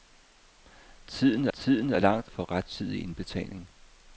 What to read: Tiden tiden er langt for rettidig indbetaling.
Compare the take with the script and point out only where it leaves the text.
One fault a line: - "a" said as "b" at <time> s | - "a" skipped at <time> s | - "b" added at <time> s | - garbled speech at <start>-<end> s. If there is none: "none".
none